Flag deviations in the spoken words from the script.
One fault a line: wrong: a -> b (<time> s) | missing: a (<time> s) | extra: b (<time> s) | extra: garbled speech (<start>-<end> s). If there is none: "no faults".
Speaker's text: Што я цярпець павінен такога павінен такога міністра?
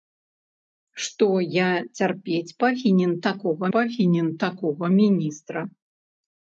no faults